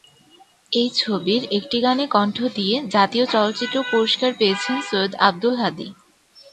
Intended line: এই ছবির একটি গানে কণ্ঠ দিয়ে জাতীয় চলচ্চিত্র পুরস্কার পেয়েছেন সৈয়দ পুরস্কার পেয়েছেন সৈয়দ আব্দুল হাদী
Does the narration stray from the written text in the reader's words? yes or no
yes